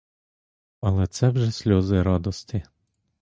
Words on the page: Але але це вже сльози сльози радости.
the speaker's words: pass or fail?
fail